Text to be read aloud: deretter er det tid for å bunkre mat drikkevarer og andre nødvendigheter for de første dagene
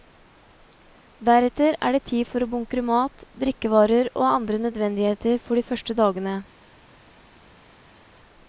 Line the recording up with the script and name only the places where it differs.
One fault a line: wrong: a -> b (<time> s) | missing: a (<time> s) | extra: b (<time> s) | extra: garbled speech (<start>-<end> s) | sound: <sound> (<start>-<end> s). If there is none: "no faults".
no faults